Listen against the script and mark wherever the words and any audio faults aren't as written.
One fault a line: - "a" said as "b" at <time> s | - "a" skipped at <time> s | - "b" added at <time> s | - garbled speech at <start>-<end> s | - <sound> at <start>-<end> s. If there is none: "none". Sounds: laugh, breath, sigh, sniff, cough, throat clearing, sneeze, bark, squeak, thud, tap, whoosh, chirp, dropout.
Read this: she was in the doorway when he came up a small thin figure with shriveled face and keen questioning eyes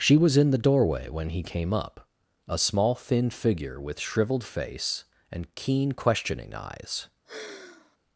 - sigh at 7.3-8.0 s